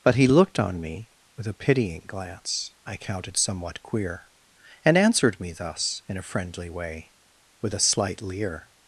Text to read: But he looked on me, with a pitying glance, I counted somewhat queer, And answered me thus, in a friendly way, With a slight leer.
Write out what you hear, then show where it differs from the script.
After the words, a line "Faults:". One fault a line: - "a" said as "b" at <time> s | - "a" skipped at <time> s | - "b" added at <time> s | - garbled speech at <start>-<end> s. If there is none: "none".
But he looked on me, with a pitying glance, I counted somewhat queer, And answered me thus, in a friendly way, With a slight leer.
Faults:
none